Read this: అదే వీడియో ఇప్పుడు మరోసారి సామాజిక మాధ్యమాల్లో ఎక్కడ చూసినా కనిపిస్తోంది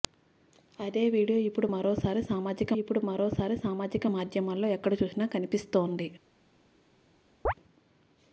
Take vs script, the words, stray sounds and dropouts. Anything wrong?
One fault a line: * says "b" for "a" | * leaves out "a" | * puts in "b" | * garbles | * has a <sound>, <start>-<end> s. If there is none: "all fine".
* puts in "ఇప్పుడు మరోసారి సామాజిక"
* has a chirp, 7.4-7.5 s